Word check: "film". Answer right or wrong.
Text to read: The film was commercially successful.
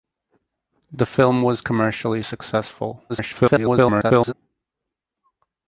right